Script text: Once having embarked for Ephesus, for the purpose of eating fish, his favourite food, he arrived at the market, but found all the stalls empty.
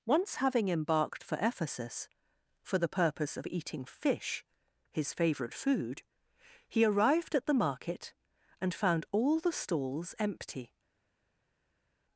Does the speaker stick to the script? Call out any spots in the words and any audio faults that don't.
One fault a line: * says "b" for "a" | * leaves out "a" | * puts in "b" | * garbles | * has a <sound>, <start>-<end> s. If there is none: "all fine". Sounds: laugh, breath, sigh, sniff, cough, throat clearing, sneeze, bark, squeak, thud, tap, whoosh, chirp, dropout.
* says "and" for "but"